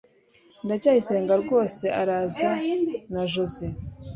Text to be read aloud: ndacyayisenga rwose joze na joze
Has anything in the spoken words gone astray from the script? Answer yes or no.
yes